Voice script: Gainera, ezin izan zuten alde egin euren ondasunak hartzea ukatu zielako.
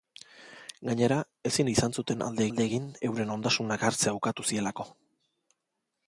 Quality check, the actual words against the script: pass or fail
fail